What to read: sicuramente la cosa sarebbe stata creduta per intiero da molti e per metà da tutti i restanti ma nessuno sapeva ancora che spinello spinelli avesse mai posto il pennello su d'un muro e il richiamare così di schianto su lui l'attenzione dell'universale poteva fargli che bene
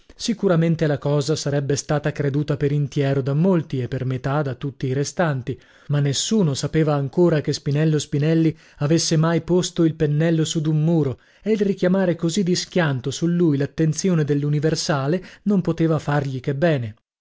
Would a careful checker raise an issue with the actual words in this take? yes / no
yes